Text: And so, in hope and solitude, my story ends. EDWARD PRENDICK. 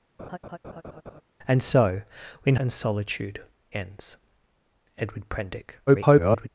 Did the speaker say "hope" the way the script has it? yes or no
no